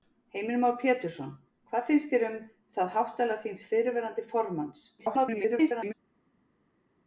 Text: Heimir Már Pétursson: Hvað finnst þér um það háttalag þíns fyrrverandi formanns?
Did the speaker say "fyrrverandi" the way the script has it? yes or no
yes